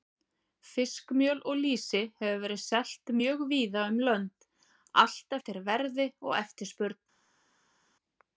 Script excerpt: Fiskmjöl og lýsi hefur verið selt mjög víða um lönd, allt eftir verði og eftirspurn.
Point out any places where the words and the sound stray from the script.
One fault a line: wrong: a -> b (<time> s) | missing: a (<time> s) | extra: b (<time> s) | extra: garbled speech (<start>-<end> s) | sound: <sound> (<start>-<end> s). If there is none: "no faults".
no faults